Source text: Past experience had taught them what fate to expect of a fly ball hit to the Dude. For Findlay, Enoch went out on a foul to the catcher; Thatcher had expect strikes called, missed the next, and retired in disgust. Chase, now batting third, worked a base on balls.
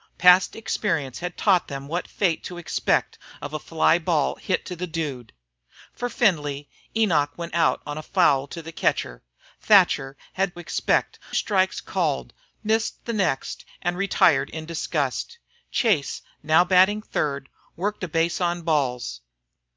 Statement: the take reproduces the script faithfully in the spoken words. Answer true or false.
true